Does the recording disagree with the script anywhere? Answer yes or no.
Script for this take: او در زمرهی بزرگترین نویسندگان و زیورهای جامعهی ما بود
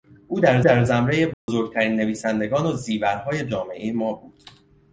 yes